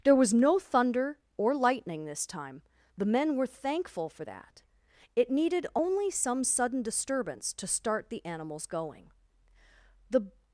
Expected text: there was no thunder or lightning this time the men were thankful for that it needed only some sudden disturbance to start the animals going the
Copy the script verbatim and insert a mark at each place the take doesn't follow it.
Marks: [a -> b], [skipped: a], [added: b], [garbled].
there was no thunder or lightning this time the men were thankful for that it needed only some sudden disturbance to start the animals going the